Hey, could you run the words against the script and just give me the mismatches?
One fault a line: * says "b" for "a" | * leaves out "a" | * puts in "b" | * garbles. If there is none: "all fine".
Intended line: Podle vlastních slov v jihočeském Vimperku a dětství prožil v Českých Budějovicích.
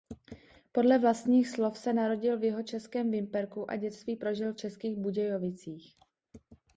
* puts in "se narodil"